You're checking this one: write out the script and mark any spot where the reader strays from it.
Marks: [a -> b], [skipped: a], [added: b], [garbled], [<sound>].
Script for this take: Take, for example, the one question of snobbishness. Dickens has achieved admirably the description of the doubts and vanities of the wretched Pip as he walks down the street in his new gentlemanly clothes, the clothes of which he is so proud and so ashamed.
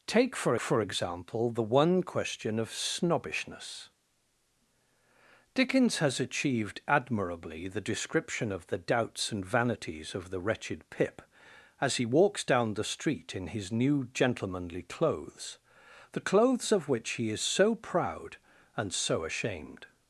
Take, for [added: for] example, the one question of snobbishness. Dickens has achieved admirably the description of the doubts and vanities of the wretched Pip as he walks down the street in his new gentlemanly clothes, the clothes of which he is so proud and so ashamed.